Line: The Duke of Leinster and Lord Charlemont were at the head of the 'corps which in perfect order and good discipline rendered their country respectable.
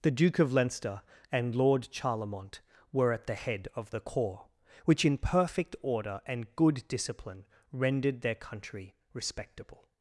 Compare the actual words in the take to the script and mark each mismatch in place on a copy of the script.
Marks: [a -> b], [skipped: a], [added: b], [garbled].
The Duke of Leinster and Lord Charlemont were at the head of the 'corps which in perfect order and good discipline rendered their country respectable.